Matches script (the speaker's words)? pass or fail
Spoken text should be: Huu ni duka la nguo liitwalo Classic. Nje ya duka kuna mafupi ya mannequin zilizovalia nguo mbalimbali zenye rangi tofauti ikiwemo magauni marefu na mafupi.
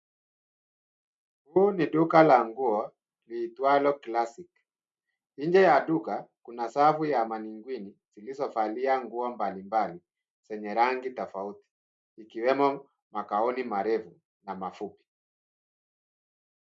fail